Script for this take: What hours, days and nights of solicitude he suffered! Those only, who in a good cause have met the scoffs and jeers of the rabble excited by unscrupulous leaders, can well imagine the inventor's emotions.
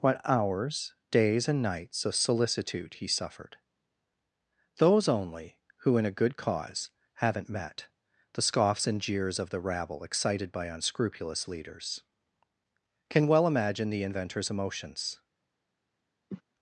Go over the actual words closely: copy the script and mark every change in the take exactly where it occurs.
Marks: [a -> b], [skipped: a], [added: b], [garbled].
What hours, days and nights of solicitude he suffered! Those only, who in a good cause [have -> haven't] met the scoffs and jeers of the rabble excited by unscrupulous leaders, can well imagine the inventor's emotions.